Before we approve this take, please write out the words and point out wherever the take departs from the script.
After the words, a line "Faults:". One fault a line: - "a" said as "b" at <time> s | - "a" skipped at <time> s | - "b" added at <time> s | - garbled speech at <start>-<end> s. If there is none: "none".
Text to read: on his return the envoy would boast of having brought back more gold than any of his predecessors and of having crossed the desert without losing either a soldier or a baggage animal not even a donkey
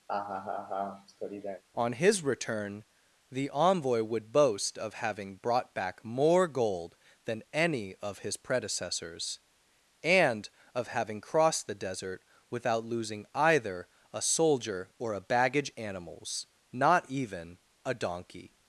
on his return the envoy would boast of having brought back more gold than any of his predecessors and of having crossed the desert without losing either a soldier or a baggage animals not even a donkey
Faults:
- "animal" said as "animals" at 15.7 s